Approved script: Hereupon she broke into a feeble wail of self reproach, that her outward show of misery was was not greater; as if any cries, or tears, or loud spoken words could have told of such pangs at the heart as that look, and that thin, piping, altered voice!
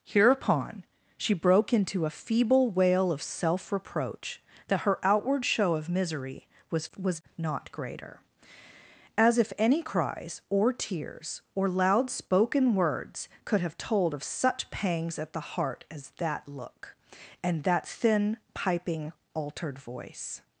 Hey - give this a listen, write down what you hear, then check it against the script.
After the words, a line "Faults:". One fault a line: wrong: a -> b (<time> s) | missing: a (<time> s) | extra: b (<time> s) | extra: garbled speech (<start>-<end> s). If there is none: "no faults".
Hereupon she broke into a feeble wail of self reproach, that her outward show of misery was was not greater; as if any cries, or tears, or loud spoken words could have told of such pangs at the heart as that look, and that thin, piping, altered voice!
Faults:
no faults